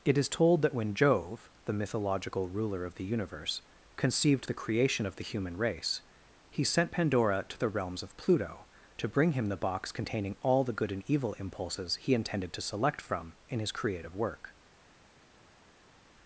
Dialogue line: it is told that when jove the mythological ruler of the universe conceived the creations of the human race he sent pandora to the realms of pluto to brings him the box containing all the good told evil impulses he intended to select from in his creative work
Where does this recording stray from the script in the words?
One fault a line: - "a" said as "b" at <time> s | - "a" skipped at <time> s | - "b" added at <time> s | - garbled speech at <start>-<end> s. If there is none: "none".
- "creations" said as "creation" at 4.5 s
- "brings" said as "bring" at 9.1 s
- "told" said as "and" at 10.9 s